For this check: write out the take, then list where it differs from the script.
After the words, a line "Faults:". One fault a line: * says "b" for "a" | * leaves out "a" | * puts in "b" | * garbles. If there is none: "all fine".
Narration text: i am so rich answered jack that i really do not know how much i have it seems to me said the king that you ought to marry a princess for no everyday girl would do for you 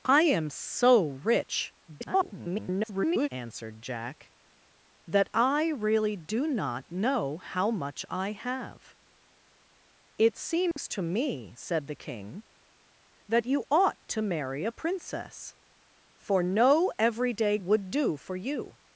i am so rich [garbled] answered jack that i really do not know how much i have it seems to me said the king that you ought to marry a princess for no everyday would do for you
Faults:
* garbles
* leaves out "girl"